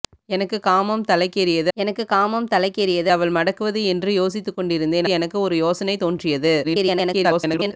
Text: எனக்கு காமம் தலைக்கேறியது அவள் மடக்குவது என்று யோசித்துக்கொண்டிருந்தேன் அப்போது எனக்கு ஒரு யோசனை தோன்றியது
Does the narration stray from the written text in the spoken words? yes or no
yes